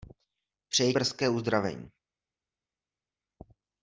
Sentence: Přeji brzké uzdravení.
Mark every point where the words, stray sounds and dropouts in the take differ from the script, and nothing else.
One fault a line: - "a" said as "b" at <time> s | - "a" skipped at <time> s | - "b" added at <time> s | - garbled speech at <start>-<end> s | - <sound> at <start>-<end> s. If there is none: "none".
none